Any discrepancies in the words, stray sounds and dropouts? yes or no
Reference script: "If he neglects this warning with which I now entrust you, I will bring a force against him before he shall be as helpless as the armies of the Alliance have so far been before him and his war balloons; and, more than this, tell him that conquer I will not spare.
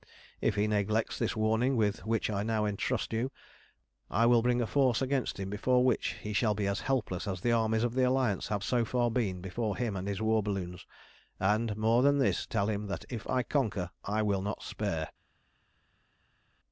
yes